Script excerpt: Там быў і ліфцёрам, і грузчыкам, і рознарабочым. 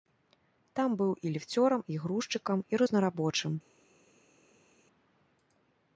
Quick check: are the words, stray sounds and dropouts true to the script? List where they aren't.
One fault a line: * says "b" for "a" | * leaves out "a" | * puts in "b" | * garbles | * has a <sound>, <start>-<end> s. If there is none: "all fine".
all fine